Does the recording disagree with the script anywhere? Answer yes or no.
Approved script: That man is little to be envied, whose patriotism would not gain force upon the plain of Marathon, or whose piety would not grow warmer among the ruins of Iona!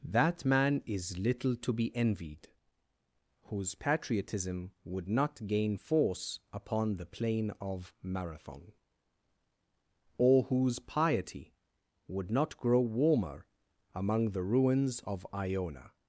no